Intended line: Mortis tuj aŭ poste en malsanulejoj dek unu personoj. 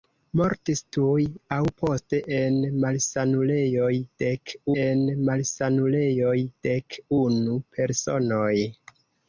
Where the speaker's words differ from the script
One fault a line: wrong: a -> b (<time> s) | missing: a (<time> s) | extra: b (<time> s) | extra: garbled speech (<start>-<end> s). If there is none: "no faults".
extra: en malsanulejoj dek (4.8 s)